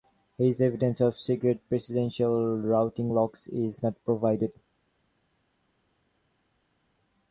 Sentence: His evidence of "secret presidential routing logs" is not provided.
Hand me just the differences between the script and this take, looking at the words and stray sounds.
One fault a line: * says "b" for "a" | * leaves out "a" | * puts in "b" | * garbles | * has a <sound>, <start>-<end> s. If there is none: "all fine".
all fine